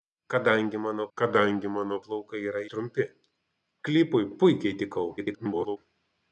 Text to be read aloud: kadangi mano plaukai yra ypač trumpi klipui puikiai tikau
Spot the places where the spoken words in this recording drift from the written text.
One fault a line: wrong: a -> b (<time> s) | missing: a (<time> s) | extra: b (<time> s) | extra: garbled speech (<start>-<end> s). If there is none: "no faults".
extra: kadangi mano (1.2 s)
missing: ypač (2.6 s)
extra: garbled speech (5.2-5.8 s)